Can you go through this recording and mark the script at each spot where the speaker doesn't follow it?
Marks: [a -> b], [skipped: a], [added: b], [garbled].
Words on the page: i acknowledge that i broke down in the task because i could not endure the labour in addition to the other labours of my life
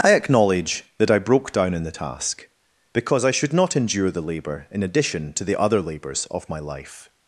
i acknowledge that i broke down in the task because i [could -> should] not endure the labour in addition to the other labours of my life